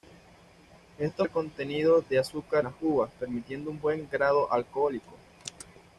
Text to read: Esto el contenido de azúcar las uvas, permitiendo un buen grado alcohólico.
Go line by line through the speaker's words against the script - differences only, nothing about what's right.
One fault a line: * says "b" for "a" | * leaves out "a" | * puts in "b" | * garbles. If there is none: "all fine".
all fine